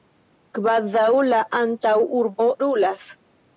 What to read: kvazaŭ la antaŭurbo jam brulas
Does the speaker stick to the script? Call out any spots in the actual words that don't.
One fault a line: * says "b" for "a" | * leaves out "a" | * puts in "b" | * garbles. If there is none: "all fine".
* leaves out "jam"